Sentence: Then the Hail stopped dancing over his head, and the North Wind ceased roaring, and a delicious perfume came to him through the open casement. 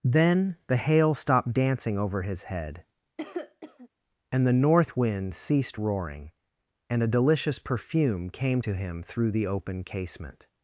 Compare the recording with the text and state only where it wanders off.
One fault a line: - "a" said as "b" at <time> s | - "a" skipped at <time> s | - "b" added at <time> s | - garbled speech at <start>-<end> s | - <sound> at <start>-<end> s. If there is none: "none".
- cough at 3.2-3.9 s